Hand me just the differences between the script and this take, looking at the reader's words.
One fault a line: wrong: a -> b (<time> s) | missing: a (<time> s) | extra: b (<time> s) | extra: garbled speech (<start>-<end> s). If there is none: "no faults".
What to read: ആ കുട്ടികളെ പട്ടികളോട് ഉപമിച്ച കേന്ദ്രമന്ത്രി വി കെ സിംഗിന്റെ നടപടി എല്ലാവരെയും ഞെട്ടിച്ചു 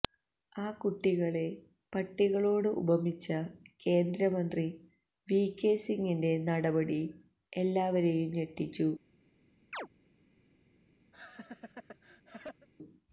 no faults